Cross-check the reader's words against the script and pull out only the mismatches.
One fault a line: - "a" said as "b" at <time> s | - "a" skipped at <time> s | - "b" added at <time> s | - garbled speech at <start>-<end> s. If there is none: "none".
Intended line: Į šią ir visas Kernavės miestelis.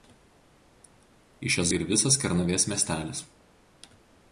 none